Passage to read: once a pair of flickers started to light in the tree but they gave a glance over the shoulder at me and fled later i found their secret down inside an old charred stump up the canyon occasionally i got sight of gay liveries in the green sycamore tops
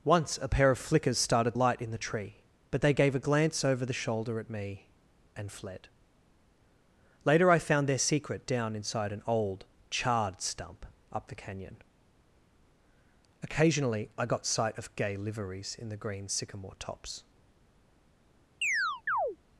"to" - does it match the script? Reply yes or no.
no